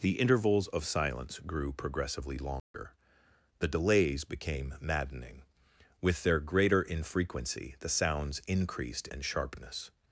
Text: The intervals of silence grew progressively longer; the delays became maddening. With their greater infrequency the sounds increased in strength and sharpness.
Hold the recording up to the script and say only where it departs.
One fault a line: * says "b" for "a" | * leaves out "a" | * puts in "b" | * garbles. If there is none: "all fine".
* leaves out "in strength"